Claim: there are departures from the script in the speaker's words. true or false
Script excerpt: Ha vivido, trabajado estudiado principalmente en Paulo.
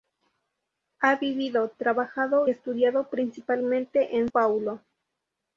false